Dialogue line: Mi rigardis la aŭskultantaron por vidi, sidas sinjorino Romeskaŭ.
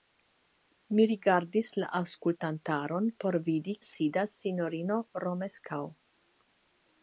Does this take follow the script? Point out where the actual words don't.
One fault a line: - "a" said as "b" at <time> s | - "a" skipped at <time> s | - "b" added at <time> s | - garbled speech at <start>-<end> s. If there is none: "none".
none